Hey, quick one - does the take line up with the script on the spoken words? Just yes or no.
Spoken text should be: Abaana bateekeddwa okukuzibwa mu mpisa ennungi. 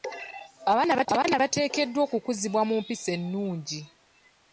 yes